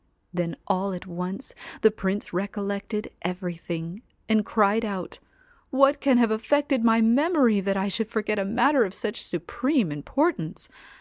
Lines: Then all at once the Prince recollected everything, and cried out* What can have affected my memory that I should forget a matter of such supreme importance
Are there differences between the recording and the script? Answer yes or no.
no